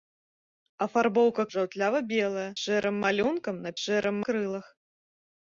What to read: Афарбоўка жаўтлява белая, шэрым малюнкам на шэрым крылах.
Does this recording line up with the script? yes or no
yes